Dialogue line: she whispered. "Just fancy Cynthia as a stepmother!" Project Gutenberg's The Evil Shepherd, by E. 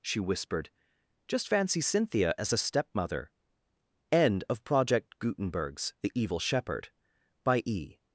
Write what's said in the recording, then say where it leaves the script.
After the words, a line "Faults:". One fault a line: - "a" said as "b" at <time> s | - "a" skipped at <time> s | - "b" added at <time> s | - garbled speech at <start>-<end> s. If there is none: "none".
she whispered. "Just fancy Cynthia as a stepmother!" End of Project Gutenberg's The Evil Shepherd, by E.
Faults:
- "End of" added at 4.1 s